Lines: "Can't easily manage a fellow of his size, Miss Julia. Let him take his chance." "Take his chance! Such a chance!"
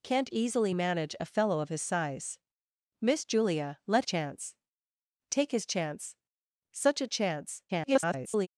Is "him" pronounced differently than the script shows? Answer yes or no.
yes